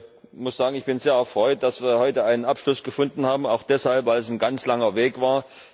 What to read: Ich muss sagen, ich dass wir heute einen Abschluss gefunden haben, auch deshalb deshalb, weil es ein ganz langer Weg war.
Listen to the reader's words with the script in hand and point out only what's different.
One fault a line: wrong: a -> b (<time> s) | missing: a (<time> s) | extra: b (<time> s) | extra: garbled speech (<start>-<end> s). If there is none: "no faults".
extra: bin sehr erfreut (0.8 s)
missing: deshalb (4.1 s)